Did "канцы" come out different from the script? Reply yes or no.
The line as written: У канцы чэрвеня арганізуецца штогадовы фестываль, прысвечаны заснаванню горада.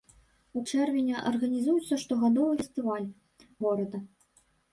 yes